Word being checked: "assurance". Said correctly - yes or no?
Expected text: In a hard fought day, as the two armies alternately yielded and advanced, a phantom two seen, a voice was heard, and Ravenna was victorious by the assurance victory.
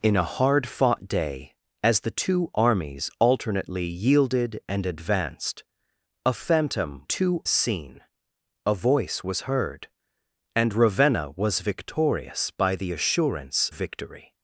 yes